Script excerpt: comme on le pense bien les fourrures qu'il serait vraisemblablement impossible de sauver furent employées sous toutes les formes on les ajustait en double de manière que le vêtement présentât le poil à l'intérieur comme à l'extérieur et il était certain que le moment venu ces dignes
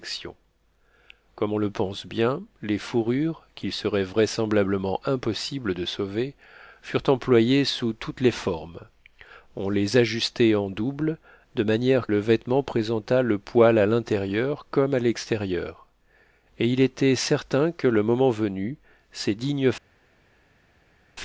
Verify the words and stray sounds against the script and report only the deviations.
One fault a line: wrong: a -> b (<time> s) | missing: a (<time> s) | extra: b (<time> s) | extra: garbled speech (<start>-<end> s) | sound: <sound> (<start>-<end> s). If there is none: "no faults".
missing: que (12.1 s)